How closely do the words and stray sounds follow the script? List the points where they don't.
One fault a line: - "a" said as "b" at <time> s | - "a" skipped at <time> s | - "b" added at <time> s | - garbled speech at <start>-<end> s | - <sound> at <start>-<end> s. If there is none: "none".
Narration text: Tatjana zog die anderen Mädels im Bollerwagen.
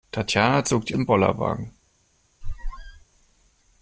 - "anderen Mädels" skipped at 1.0 s
- squeak at 2.4-3.0 s